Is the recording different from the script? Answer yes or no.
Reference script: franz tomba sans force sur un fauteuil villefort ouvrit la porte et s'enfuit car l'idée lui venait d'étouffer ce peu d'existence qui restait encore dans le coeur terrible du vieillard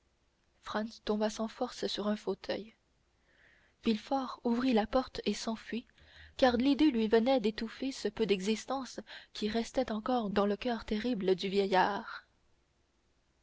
no